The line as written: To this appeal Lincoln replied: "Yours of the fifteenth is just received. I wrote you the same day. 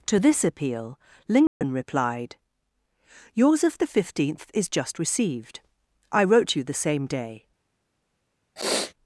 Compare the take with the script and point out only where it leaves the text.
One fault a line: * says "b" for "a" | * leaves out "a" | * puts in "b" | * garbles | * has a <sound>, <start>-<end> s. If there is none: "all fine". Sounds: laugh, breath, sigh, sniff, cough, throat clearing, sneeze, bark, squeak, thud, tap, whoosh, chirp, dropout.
* has a dropout, 1.5-1.6 s
* has a sniff, 8.6-8.9 s